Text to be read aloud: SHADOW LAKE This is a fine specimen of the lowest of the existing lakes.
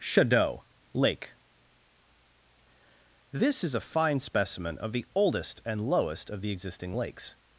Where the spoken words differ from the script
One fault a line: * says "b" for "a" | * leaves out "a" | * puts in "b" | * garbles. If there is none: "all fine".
* puts in "oldest and"